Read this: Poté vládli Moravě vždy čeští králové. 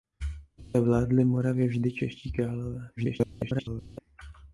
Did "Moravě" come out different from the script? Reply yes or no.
no